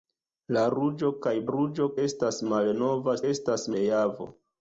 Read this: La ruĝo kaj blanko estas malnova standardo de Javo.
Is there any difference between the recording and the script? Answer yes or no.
yes